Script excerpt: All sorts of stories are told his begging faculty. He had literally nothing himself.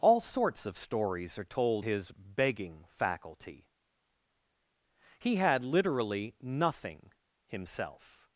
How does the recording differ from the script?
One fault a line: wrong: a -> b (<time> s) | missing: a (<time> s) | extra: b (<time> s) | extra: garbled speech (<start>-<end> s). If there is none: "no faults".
no faults